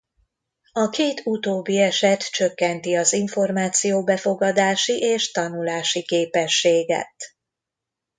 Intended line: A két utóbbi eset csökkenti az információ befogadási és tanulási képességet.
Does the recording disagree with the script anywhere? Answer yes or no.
no